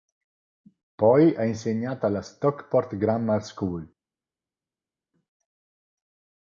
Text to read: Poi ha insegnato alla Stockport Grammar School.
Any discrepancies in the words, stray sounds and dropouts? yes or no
no